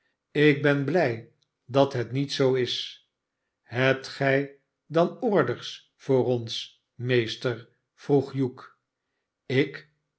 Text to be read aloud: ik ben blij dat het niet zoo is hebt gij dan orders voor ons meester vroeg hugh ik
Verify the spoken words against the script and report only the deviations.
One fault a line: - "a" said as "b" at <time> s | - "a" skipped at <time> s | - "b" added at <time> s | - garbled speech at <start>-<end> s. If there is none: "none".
none